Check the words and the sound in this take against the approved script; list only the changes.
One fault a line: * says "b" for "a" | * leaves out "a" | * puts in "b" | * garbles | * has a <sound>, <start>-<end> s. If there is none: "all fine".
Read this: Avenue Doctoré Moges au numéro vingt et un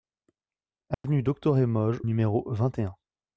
* has a dropout, 0.9-1.0 s
* leaves out "au"